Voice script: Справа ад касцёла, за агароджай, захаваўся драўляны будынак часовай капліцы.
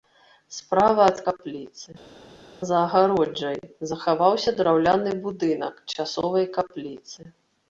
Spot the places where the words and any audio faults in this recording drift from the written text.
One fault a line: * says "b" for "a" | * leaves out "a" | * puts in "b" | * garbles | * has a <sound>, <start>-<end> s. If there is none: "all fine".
* says "капліцы" for "касцёла"